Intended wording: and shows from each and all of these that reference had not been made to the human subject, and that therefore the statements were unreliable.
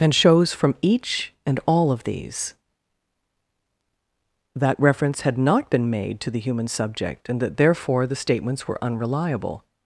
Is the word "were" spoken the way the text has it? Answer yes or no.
yes